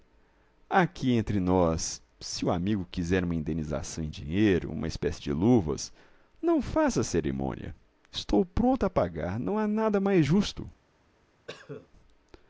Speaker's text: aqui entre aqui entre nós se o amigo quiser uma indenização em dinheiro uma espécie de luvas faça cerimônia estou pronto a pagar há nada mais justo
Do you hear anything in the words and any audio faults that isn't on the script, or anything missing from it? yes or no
yes